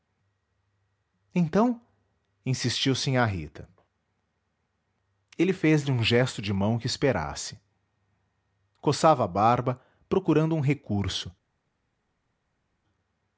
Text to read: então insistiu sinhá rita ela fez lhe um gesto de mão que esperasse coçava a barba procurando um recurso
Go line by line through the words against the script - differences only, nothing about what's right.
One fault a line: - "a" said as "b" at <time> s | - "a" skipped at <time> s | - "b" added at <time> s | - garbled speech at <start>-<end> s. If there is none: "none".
- "ela" said as "ele" at 5.4 s